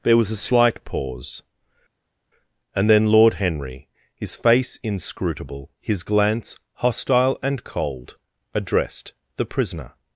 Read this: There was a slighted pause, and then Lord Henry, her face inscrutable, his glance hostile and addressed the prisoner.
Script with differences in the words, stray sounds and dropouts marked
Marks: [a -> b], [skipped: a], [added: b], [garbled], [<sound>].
There was a [slighted -> slight] pause, and then Lord Henry, [her -> his] face inscrutable, his glance hostile and [added: cold] addressed the prisoner.